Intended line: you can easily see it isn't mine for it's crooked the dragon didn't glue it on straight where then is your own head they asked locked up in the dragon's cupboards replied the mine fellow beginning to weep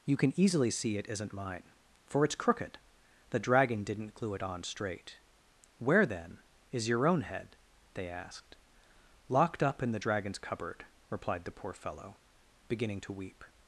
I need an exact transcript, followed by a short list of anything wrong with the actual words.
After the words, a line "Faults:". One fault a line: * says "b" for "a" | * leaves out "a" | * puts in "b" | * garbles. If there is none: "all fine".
you can easily see it isn't mine for it's crooked the dragon didn't glue it on straight where then is your own head they asked locked up in the dragon's cupboard replied the poor fellow beginning to weep
Faults:
* says "cupboard" for "cupboards"
* says "poor" for "mine"